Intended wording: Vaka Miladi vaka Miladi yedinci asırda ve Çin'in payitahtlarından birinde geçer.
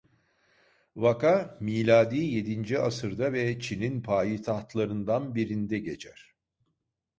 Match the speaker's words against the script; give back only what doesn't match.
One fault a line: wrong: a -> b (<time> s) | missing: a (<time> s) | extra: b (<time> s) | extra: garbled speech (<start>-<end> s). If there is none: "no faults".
missing: vaka Miladi (2.2 s)